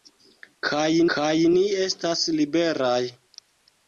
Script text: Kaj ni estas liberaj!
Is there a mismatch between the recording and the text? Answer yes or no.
yes